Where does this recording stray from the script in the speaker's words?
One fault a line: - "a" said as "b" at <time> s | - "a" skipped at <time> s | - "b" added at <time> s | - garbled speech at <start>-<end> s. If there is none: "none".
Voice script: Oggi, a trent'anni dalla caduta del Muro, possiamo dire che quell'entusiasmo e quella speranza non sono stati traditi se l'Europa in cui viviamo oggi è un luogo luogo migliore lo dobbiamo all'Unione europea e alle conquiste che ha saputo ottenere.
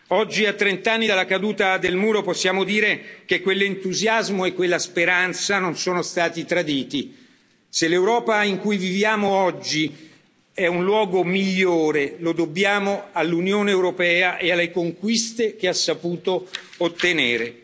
- "luogo" skipped at 11.2 s